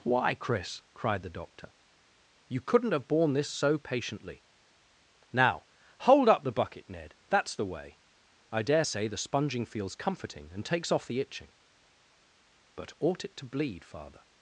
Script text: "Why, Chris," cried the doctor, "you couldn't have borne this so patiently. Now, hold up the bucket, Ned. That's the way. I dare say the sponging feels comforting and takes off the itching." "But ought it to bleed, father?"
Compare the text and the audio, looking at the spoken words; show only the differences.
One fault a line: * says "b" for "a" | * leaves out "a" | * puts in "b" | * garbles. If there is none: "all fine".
all fine